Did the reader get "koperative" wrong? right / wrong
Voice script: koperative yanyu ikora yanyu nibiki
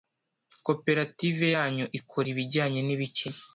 right